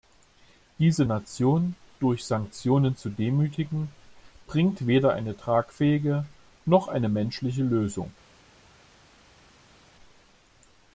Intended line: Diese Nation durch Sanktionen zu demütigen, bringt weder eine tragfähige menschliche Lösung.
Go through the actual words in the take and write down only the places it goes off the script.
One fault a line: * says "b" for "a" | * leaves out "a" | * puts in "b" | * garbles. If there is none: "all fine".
* puts in "noch eine"